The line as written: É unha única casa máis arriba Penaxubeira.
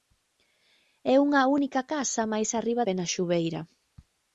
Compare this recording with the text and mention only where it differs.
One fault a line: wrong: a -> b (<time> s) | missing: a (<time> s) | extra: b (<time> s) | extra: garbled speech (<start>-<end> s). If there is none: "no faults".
no faults